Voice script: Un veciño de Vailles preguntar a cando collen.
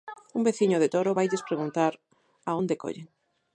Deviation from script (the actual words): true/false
true